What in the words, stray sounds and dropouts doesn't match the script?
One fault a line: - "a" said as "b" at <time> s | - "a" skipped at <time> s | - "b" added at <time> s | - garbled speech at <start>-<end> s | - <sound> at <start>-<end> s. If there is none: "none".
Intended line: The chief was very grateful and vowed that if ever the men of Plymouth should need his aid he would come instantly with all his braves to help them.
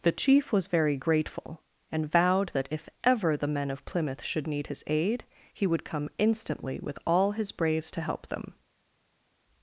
none